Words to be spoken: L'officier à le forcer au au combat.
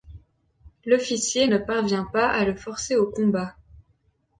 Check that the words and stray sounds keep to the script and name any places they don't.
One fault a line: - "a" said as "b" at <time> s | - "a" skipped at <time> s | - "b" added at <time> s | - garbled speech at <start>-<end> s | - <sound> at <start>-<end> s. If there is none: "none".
- "ne parvient pas" added at 1.4 s
- "au" skipped at 3.1 s